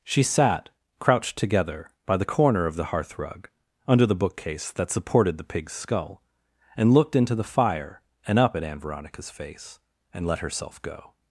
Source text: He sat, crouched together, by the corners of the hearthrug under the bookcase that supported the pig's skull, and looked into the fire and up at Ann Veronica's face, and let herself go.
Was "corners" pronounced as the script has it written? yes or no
no